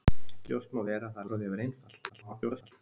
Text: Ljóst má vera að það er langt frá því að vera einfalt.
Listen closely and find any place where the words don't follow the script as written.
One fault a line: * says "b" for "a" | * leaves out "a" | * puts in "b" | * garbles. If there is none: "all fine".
* leaves out "langt"
* garbles